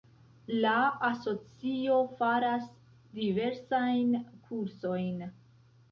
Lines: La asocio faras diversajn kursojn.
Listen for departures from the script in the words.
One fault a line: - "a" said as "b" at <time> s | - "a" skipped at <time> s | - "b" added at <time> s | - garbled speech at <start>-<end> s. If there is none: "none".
none